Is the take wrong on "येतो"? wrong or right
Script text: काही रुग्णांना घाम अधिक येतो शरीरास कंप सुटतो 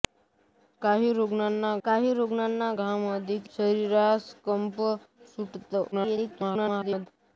wrong